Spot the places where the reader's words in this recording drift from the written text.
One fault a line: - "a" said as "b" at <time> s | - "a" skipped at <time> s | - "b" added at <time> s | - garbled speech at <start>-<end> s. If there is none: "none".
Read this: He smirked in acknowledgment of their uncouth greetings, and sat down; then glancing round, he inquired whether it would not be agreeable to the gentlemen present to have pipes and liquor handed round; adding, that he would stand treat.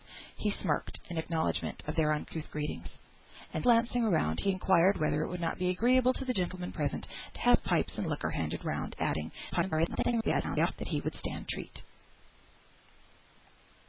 - "sat down then" skipped at 3.6 s
- garbled speech at 9.5-10.7 s